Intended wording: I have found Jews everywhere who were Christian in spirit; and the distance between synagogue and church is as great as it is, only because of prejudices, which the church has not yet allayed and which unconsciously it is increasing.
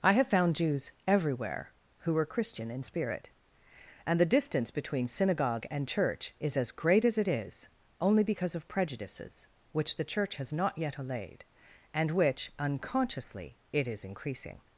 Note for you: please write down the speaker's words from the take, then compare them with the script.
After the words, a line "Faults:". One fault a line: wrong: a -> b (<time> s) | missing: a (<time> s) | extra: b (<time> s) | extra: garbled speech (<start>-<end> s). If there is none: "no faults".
I have found Jews everywhere who were Christian in spirit; and the distance between synagogue and church is as great as it is, only because of prejudices, which the church has not yet allayed and which unconsciously it is increasing.
Faults:
no faults